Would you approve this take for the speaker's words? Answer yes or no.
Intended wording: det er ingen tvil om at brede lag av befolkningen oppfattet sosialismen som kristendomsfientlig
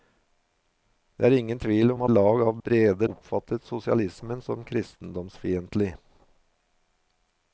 no